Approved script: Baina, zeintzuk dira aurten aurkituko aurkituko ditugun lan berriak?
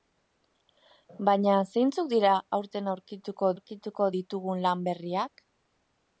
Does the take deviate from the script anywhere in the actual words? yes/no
no